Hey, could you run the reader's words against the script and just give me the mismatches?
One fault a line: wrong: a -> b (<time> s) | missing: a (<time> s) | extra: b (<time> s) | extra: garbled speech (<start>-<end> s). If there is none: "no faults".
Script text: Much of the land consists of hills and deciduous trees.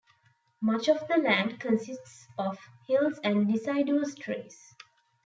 no faults